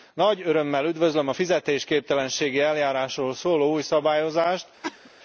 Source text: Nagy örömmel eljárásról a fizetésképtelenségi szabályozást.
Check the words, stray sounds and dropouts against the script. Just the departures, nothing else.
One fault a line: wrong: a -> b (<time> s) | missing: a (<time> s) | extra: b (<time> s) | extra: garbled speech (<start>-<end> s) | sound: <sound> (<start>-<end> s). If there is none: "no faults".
wrong: eljárásról -> üdvözlöm (0.8 s)
extra: eljárásról szóló új (2.6 s)
sound: cough (4.8-5.1 s)